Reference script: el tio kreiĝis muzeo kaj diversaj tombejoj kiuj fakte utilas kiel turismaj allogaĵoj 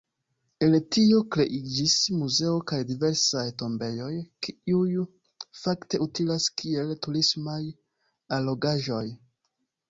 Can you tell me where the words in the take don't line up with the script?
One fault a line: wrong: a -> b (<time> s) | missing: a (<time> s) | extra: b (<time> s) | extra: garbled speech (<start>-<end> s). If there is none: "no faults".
no faults